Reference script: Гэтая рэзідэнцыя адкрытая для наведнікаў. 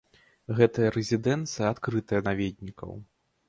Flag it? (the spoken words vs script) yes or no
yes